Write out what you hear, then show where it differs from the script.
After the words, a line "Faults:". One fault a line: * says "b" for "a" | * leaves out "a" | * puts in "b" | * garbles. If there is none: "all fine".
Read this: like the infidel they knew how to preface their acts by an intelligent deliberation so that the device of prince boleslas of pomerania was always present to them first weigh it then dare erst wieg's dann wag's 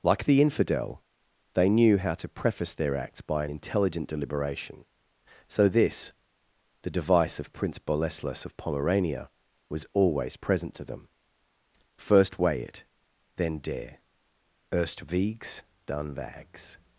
like the infidel they knew how to preface their acts by an intelligent deliberation so this the device of prince boleslas of pomerania was always present to them first weigh it then dare erst wieg's dann wag's
Faults:
* says "this" for "that"